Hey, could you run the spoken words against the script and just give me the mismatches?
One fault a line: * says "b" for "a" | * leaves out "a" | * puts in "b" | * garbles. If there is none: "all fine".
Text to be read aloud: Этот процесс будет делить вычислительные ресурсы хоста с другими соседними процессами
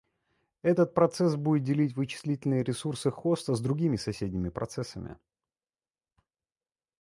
all fine